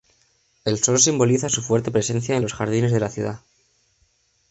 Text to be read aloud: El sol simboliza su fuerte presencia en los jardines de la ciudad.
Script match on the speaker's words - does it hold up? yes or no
yes